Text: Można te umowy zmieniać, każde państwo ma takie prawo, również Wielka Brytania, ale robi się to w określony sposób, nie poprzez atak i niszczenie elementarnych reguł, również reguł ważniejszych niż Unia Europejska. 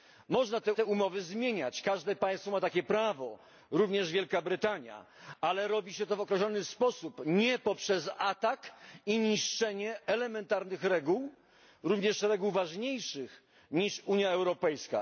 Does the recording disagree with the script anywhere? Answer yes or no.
yes